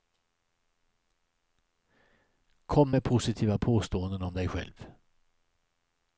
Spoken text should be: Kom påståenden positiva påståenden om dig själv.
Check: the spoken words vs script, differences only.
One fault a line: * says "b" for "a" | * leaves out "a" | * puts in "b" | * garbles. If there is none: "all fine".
* says "med" for "påståenden"